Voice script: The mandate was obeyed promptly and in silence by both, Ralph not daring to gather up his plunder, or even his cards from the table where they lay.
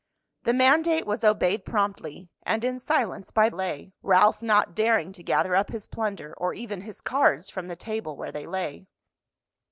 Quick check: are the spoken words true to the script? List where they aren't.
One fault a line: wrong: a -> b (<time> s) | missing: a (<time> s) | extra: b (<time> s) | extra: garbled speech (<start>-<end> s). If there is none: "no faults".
wrong: both -> lay (3.5 s)